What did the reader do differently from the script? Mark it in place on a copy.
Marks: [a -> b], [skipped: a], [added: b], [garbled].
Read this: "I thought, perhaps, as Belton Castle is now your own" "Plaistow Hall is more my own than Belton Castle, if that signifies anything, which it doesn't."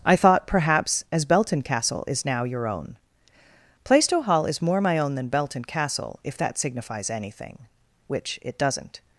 "I thought, perhaps, as Belton Castle is now your own" "Plaistow Hall is more my own than Belton Castle, if that signifies anything, which it doesn't."